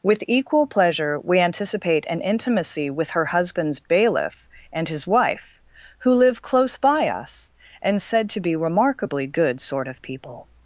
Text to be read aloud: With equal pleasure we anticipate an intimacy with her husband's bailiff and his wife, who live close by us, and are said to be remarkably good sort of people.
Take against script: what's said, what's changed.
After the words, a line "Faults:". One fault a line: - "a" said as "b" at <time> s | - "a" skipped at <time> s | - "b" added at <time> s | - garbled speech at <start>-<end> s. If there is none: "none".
With equal pleasure we anticipate an intimacy with her husband's bailiff and his wife, who live close by us, and said to be remarkably good sort of people.
Faults:
- "are" skipped at 8.0 s